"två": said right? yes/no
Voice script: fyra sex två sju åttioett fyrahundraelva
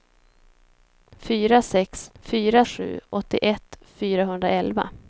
no